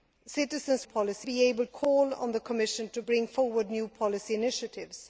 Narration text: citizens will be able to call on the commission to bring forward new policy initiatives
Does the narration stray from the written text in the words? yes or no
yes